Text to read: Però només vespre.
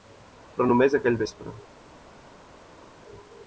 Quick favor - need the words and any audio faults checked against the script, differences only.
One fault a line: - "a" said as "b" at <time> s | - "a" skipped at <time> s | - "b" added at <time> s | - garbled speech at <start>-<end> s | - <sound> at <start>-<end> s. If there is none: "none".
- "aquell" added at 1.0 s